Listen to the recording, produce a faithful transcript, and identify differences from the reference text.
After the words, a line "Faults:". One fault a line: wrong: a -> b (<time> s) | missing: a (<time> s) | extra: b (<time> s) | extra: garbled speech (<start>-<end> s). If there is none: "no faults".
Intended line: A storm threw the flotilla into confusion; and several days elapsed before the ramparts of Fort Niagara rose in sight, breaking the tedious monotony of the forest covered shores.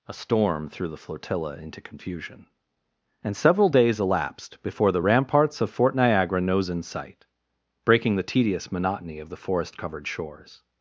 A storm threw the flotilla into confusion; and several days elapsed before the ramparts of Fort Niagara nose in sight, breaking the tedious monotony of the forest covered shores.
Faults:
wrong: rose -> nose (6.4 s)